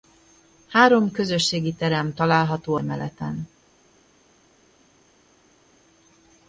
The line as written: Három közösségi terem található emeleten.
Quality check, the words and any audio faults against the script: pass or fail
pass